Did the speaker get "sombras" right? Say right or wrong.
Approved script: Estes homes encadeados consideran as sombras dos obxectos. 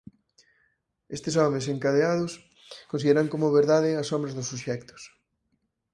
right